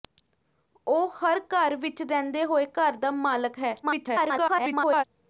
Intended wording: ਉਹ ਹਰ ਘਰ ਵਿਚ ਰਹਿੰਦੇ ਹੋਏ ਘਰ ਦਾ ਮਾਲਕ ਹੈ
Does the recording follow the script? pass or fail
fail